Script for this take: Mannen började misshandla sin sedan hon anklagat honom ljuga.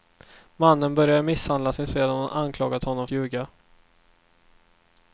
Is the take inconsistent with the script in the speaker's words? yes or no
no